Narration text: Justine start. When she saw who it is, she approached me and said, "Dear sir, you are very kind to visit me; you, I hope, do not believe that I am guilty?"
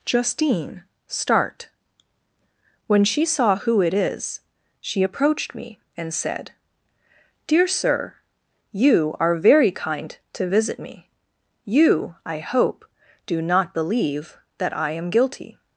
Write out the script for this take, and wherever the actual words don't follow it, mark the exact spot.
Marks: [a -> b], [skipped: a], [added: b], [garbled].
Justine start. When she saw who it is, she approached me and said, "Dear sir, you are very kind to visit me; you, I hope, do not believe that I am guilty?"